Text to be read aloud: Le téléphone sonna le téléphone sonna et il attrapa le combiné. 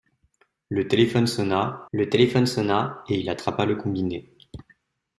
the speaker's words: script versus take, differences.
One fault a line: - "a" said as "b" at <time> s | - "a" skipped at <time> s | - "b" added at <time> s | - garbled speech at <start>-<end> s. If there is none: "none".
none